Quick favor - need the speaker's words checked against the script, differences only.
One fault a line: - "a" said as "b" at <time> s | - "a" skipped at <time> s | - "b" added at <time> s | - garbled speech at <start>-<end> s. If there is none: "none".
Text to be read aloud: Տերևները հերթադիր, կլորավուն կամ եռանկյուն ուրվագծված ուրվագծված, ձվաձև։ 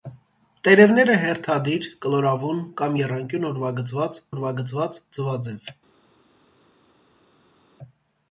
none